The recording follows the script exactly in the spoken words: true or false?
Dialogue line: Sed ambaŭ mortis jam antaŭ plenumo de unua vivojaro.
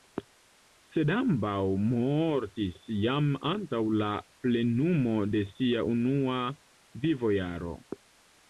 false